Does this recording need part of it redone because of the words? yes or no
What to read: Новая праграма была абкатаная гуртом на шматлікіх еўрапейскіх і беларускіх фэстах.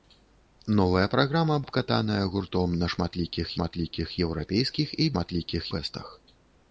yes